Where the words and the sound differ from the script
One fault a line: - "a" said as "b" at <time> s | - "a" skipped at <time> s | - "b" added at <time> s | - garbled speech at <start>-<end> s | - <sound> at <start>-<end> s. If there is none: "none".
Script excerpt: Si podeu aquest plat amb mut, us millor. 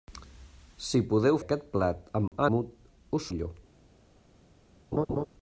- dropout at 2.3-2.3 s
- laugh at 4.9-5.3 s